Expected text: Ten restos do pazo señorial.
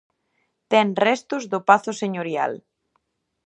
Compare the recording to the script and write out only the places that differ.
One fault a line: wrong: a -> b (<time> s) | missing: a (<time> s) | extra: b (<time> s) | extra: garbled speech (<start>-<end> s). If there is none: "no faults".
no faults